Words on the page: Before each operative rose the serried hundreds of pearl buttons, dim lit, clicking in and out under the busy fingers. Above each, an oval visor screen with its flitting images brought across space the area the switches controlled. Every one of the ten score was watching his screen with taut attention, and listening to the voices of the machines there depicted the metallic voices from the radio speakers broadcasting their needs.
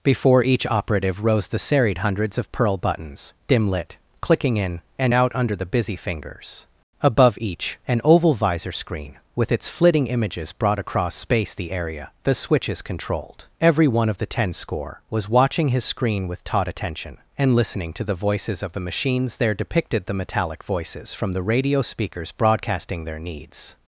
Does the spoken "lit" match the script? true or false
true